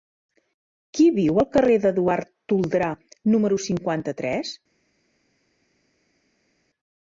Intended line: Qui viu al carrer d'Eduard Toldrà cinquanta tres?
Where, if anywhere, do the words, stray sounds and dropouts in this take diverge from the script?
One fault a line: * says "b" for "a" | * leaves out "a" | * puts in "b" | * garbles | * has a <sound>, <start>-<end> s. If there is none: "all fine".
* puts in "número"